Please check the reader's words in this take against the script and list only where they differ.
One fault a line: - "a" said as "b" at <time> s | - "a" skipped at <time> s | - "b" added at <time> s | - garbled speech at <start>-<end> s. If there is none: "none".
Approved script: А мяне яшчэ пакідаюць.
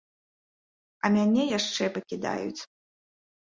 none